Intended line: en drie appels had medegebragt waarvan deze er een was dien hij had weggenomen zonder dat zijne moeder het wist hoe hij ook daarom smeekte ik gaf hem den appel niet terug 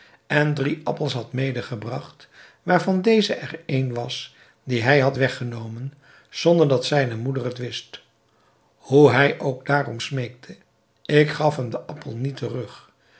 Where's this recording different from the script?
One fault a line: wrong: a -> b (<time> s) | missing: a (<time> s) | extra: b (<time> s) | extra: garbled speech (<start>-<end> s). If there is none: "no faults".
no faults